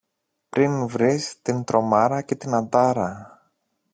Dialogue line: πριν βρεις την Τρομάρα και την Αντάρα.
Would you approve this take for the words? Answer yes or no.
yes